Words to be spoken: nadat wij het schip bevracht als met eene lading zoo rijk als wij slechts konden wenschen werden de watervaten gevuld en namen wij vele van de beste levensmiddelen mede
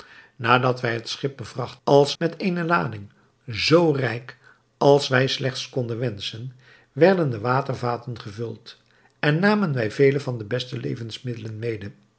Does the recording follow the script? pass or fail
pass